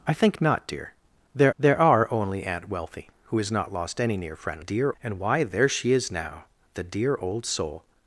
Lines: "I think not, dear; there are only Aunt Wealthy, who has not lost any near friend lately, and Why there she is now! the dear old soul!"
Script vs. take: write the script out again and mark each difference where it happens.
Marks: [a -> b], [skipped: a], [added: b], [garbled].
"I think not, dear; there [added: there] are only Aunt Wealthy, who has not lost any near friend [lately, -> dear] and Why there she is now! the dear old soul!"